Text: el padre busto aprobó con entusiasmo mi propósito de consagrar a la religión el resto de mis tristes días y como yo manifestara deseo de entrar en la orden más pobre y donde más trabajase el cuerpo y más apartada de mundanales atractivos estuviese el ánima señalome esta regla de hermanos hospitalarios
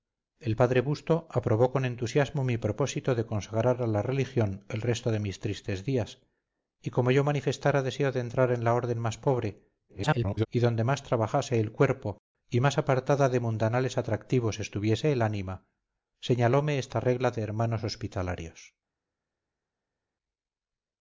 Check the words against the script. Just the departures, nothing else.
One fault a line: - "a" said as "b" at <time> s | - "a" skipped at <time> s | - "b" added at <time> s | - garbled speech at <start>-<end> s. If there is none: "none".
- garbled speech at 9.9-10.5 s